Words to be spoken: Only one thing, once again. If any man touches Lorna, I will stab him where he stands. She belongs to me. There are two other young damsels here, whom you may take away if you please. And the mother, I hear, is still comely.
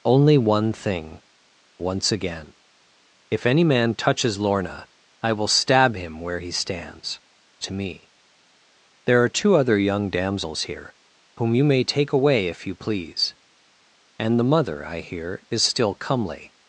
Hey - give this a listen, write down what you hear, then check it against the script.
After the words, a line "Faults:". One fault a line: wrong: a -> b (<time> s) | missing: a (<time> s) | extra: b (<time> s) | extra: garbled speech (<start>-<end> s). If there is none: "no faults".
Only one thing, once again. If any man touches Lorna, I will stab him where he stands. To me. There are two other young damsels here, whom you may take away if you please. And the mother, I hear, is still comely.
Faults:
missing: She belongs (7.2 s)